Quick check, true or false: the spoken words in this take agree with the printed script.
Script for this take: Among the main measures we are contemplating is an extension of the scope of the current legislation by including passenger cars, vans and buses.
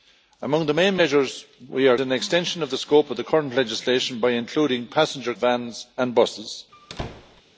false